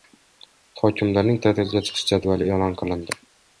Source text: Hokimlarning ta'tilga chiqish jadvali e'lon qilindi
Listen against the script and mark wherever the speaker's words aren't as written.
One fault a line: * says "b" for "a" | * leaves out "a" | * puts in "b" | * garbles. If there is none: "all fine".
all fine